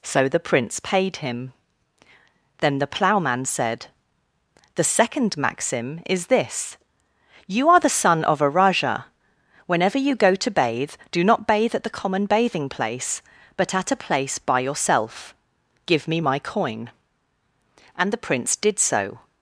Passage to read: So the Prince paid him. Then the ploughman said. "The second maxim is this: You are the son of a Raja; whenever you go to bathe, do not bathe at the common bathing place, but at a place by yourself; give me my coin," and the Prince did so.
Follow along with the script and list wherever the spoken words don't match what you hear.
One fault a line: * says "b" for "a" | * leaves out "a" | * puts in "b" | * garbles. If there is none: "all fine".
all fine